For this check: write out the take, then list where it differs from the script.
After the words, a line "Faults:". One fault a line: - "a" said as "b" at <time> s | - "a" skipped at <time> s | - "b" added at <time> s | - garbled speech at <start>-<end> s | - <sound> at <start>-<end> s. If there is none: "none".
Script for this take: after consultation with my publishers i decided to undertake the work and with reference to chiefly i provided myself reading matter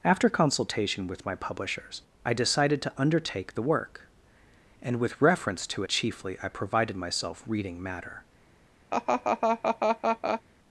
after consultation with my publishers i decided to undertake the work and with reference to chiefly i provided myself reading matter
Faults:
- laugh at 8.9-10.4 s